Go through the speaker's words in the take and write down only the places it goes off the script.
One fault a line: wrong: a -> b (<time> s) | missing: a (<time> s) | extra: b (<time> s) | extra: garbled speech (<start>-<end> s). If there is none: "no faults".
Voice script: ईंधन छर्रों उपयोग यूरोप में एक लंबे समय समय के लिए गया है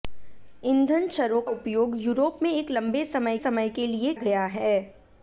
no faults